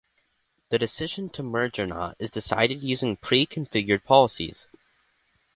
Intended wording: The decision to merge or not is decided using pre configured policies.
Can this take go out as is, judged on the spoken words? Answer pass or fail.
pass